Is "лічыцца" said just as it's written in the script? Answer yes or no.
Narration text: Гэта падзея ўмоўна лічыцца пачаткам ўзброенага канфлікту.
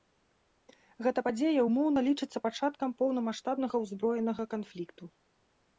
yes